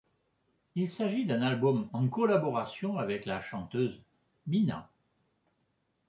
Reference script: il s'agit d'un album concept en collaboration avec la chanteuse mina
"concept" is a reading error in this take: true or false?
true